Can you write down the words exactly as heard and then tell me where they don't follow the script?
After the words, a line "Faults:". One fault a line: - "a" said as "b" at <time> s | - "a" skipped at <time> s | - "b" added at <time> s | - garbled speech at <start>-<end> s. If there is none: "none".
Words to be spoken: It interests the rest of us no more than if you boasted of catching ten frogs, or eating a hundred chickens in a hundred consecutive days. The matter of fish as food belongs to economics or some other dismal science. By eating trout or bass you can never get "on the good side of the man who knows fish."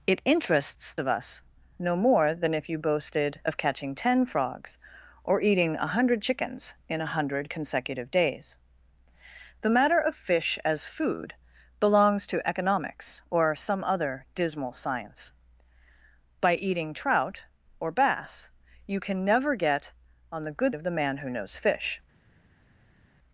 It interests of us no more than if you boasted of catching ten frogs, or eating a hundred chickens in a hundred consecutive days. The matter of fish as food belongs to economics or some other dismal science. By eating trout or bass you can never get "on the good of the man who knows fish."
Faults:
- "the rest" skipped at 0.9 s
- "side" skipped at 20.7 s